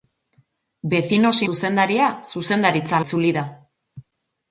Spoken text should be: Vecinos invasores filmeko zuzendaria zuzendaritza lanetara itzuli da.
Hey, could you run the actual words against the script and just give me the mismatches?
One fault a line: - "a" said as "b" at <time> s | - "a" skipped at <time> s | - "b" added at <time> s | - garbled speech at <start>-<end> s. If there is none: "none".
- "invasores filmeko" skipped at 1.4 s
- "lanetara" skipped at 3.0 s